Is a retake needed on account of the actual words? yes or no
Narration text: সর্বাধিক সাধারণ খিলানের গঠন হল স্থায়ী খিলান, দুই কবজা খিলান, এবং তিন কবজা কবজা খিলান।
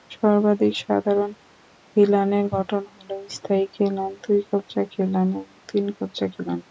yes